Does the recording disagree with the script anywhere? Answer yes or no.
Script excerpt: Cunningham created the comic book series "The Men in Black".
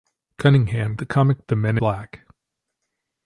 yes